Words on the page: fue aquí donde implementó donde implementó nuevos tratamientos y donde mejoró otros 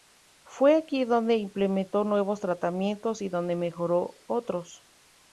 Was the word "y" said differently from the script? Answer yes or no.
no